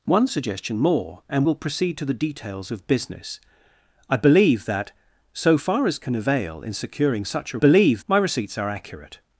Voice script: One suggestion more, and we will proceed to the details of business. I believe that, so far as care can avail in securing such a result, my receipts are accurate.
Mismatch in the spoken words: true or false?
true